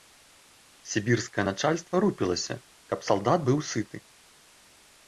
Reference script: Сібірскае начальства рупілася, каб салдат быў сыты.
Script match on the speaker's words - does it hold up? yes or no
yes